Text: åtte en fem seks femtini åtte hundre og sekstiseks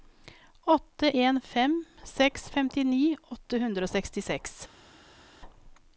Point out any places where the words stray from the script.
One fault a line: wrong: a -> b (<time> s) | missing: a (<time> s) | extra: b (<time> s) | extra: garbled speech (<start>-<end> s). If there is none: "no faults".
no faults